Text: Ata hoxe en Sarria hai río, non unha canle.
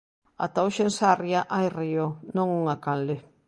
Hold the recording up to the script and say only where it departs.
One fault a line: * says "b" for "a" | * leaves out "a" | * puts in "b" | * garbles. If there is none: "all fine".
all fine